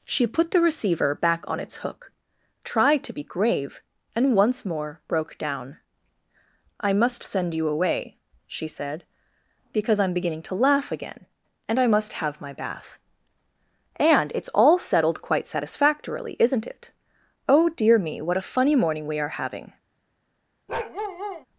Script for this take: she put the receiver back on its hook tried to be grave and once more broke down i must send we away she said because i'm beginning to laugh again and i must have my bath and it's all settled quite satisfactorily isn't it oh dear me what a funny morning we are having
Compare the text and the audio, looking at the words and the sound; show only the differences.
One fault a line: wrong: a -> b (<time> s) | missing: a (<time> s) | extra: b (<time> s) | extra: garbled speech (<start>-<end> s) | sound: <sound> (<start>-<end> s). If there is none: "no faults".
wrong: we -> you (7.5 s)
sound: bark (20.7-21.5 s)